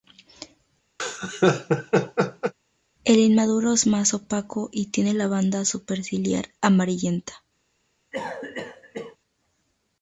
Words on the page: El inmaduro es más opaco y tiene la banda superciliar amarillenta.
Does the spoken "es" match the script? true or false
true